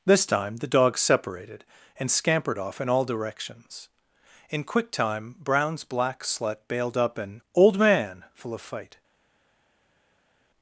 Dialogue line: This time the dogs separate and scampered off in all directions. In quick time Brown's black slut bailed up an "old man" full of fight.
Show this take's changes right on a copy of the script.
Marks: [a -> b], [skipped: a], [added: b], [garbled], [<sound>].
This time the dogs [separate -> separated] and scampered off in all directions. In quick time Brown's black slut bailed up an "old man" full of fight.